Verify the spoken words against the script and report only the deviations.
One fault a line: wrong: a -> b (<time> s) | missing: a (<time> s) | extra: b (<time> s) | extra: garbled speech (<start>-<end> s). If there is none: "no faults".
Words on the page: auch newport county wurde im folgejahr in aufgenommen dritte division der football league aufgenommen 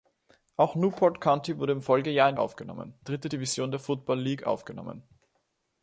no faults